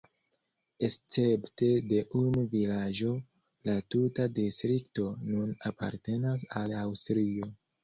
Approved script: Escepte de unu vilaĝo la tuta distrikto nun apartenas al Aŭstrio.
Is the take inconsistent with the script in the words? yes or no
no